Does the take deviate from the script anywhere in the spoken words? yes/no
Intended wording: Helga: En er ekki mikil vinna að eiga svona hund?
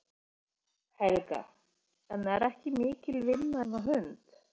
yes